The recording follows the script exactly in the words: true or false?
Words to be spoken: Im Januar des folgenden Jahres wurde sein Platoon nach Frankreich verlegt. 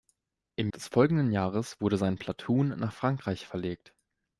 false